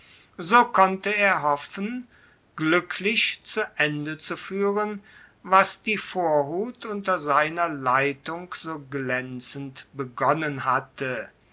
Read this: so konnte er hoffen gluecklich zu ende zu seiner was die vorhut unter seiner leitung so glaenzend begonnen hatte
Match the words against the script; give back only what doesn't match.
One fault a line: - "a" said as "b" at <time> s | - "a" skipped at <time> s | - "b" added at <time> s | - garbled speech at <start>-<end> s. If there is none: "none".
- "seiner" said as "fuehren" at 4.3 s